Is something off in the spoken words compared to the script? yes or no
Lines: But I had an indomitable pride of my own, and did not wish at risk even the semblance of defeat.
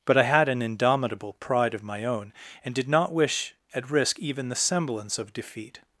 no